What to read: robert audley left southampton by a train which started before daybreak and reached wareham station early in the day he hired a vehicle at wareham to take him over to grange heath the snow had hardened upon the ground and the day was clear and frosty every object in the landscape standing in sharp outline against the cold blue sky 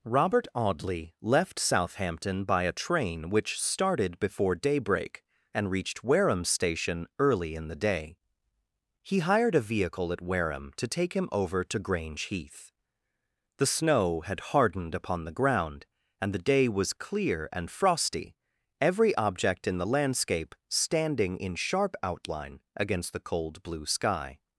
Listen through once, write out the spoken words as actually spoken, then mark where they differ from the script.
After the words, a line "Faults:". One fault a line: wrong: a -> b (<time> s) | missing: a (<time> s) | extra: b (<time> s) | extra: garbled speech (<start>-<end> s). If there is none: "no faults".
robert audley left southampton by a train which started before daybreak and reached wareham station early in the day he hired a vehicle at wareham to take him over to grange heath the snow had hardened upon the ground and the day was clear and frosty every object in the landscape standing in sharp outline against the cold blue sky
Faults:
no faults